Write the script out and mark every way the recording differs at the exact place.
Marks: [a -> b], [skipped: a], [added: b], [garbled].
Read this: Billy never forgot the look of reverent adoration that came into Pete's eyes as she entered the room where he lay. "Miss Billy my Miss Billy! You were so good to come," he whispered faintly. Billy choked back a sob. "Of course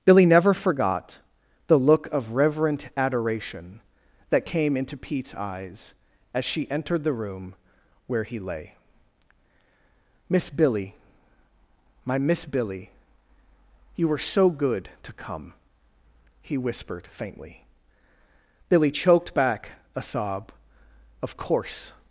Billy never forgot the look of reverent adoration that came into Pete's eyes as she entered the room where he lay. "Miss Billy my Miss Billy! You were so good to come," he whispered faintly. Billy choked back a sob. "Of course